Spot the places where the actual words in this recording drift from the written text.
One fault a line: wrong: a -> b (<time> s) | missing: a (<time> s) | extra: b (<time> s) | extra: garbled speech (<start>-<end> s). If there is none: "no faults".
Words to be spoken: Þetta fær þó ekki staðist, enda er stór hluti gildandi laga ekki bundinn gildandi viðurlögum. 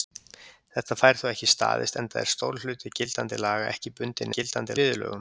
no faults